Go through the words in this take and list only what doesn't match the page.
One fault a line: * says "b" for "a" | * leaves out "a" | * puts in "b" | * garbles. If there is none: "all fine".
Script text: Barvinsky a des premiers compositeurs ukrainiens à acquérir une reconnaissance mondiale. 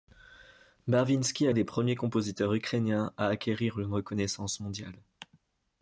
all fine